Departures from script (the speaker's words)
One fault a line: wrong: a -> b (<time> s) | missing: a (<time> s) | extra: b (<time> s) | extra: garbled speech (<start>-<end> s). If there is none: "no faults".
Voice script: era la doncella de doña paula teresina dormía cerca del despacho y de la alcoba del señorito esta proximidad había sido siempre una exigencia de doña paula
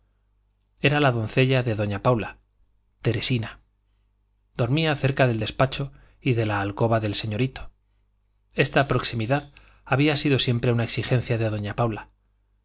no faults